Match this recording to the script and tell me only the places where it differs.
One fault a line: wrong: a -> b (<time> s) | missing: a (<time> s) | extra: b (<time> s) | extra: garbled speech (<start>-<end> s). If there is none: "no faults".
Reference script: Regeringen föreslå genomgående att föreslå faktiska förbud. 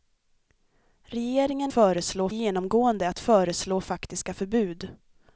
no faults